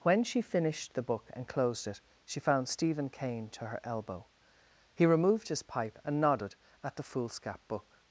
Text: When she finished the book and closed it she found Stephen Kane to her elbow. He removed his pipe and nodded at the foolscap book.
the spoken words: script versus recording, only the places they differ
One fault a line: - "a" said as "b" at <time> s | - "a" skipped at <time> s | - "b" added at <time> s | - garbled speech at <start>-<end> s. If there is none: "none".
none